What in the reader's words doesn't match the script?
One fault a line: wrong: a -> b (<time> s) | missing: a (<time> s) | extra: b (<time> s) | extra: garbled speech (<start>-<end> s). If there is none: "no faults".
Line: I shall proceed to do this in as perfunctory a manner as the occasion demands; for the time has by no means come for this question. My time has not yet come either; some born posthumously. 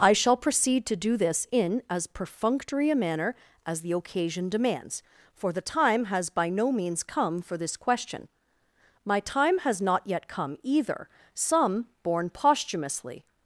no faults